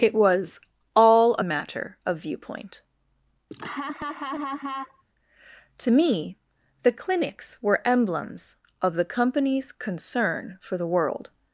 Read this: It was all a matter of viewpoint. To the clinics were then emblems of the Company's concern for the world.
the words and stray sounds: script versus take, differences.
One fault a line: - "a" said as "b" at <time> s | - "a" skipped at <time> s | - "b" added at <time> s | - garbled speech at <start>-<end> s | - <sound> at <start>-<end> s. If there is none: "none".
- laugh at 3.5-5.0 s
- "me" added at 5.9 s
- "then" skipped at 7.9 s